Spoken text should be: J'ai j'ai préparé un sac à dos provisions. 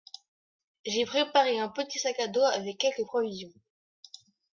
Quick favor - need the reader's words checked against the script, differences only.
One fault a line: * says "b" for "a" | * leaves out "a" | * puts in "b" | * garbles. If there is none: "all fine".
* leaves out "j'ai"
* puts in "petit"
* puts in "avec quelques"